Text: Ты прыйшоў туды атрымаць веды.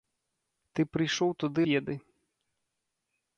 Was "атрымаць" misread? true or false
true